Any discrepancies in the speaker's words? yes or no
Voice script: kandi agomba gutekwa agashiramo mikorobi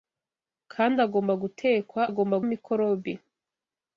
yes